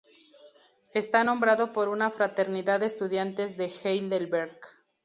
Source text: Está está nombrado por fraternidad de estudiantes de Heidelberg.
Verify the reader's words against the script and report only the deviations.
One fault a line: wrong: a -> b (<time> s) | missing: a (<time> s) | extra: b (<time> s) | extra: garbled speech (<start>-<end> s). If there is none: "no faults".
missing: está (1.2 s)
extra: una (1.9 s)